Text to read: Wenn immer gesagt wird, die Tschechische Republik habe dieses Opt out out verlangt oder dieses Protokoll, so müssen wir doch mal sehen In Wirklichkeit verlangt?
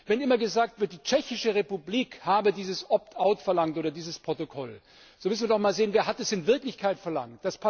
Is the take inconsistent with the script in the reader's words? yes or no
yes